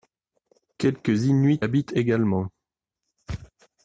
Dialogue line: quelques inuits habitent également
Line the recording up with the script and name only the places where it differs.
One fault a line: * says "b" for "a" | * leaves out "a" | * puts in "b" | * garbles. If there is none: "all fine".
all fine